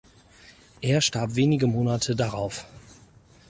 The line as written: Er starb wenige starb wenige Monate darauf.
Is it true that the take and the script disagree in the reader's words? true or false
true